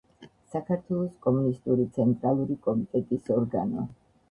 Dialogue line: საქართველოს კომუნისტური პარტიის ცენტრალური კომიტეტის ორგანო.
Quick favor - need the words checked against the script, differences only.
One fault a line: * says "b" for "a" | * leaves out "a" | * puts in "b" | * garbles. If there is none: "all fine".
* leaves out "პარტიის"